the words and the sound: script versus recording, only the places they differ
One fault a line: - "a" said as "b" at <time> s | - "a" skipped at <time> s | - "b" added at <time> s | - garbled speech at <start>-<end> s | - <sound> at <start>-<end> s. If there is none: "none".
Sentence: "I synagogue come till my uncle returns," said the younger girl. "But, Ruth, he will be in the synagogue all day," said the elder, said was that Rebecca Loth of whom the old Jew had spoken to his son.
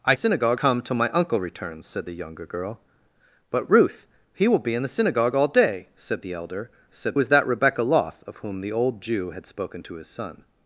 none